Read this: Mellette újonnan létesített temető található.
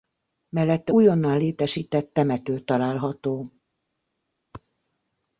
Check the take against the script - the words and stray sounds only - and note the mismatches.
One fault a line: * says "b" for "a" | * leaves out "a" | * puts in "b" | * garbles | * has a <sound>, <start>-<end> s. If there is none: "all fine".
all fine